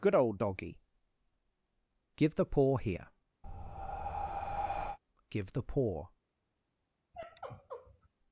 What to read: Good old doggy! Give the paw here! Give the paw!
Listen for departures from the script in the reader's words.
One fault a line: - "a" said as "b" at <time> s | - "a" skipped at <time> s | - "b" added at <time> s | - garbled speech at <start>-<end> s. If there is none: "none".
none